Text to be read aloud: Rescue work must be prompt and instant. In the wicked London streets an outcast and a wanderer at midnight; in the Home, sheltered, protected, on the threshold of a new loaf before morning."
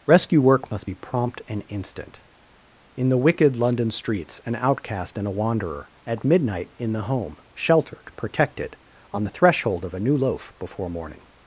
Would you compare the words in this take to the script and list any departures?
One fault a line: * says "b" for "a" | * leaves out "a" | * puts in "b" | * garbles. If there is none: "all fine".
all fine